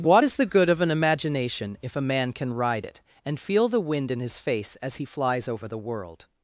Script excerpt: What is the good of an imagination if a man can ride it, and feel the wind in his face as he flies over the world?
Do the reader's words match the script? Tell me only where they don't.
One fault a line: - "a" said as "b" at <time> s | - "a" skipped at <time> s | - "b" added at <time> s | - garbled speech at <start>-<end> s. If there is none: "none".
none